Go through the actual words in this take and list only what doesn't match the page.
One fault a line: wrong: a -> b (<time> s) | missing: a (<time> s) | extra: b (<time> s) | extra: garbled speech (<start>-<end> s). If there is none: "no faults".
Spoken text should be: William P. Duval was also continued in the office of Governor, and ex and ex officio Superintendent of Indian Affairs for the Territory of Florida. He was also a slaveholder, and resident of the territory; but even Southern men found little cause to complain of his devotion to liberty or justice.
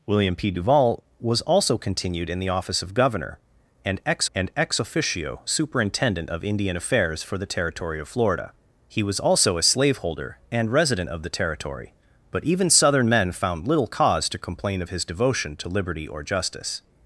no faults